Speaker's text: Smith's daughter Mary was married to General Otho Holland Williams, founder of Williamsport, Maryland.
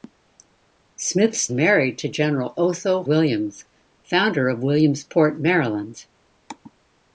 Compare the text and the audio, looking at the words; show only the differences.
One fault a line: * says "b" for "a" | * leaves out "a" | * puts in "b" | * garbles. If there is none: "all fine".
* leaves out "daughter Mary was"
* leaves out "Holland"